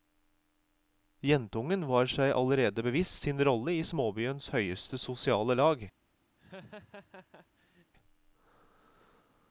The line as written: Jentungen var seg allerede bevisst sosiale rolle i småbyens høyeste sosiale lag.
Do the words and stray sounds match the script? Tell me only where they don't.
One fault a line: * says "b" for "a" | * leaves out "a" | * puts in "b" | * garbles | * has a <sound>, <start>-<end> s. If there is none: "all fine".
* says "sin" for "sosiale"
* has a laugh, 6.4-7.9 s